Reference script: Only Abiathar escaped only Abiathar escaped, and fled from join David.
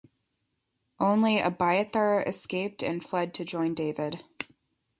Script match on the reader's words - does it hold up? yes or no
no